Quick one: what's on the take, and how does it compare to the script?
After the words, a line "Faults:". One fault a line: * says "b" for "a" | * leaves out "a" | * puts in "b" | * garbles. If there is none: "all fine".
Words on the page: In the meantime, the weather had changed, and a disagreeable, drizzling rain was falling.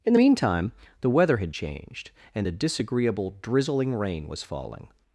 In the meantime, the weather had changed, and a disagreeable, drizzling rain was falling.
Faults:
all fine